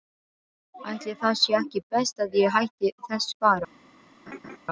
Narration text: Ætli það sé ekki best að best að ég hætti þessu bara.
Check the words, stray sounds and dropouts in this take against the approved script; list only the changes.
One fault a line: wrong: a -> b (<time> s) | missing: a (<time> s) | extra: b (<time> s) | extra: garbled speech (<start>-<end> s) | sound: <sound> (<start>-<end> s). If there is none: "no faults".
missing: best að (2.4 s)
sound: laugh (4.3-4.6 s)